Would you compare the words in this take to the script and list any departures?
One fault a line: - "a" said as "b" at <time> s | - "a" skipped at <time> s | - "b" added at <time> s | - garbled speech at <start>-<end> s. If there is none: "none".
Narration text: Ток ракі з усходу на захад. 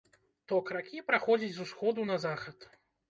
- "праходзіць" added at 1.1 s